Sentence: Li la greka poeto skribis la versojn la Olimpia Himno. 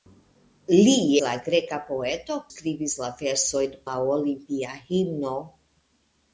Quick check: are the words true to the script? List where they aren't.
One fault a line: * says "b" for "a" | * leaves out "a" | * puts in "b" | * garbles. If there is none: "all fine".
all fine